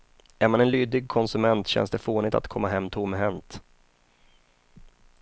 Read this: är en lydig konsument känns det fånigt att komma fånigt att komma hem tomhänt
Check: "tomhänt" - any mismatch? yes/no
no